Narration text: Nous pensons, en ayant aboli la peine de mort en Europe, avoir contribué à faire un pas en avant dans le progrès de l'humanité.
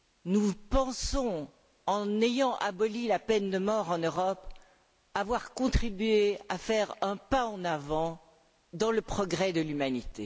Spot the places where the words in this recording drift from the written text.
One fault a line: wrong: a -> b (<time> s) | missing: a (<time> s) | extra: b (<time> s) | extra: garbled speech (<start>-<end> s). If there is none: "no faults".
no faults